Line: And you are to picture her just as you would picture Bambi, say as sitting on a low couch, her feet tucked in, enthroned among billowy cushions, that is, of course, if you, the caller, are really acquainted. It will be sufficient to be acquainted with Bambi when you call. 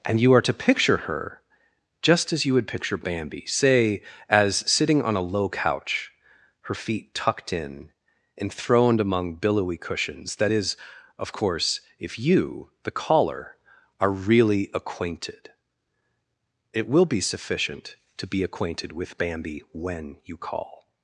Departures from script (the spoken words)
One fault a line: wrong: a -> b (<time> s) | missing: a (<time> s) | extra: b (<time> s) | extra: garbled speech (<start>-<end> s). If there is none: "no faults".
no faults